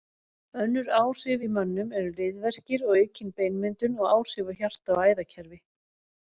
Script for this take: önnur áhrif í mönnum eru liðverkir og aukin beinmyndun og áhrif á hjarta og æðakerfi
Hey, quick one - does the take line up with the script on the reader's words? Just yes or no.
yes